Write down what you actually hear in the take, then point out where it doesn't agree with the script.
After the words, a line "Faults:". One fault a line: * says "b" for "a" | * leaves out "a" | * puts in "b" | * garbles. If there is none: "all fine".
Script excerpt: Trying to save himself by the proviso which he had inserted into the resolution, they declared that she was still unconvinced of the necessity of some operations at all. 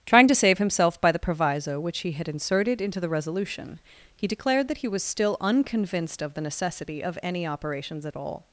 Trying to save himself by the proviso which he had inserted into the resolution, he declared that he was still unconvinced of the necessity of any operations at all.
Faults:
* says "he" for "they"
* says "he" for "she"
* says "any" for "some"